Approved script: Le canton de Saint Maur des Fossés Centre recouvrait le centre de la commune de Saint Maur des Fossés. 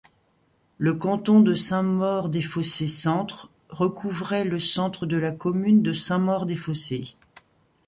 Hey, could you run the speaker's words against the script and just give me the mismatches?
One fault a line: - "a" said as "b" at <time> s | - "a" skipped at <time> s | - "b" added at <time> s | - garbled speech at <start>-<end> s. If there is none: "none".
none